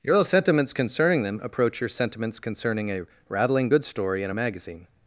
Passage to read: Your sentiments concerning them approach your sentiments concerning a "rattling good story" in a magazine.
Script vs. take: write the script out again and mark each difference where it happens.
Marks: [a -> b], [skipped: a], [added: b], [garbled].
Your sentiments concerning them approach your sentiments concerning a "rattling good story" in a magazine.